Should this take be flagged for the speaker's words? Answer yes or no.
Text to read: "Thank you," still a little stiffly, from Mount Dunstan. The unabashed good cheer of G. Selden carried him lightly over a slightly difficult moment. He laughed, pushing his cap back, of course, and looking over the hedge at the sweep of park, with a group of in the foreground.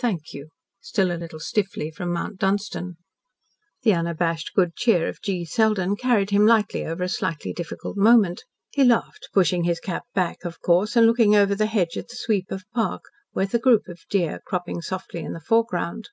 yes